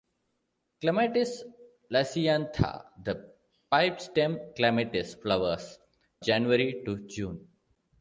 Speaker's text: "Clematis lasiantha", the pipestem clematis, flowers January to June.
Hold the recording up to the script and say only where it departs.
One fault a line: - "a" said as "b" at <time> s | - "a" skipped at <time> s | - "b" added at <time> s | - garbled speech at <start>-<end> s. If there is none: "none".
none